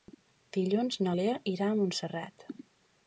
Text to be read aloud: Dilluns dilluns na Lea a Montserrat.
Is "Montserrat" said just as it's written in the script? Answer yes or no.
yes